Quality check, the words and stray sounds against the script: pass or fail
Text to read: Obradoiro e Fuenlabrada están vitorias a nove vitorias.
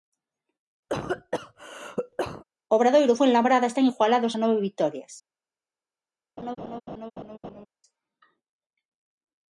fail